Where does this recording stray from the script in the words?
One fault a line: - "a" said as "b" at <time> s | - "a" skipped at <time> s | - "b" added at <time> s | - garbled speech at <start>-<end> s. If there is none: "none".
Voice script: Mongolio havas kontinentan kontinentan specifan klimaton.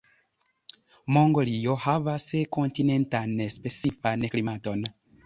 - "kontinentan" skipped at 3.4 s